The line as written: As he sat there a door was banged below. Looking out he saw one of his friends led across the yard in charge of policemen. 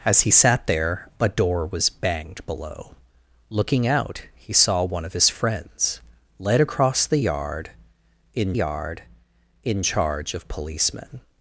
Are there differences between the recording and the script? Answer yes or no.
yes